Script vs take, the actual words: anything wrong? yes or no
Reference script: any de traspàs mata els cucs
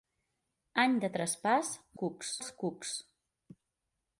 yes